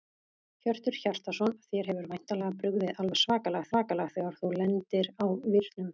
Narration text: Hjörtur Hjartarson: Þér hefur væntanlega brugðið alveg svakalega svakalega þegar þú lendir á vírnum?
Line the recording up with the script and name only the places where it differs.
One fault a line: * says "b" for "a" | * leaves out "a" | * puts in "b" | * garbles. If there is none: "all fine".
all fine